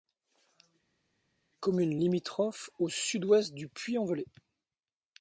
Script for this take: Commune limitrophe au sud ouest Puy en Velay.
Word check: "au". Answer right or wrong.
right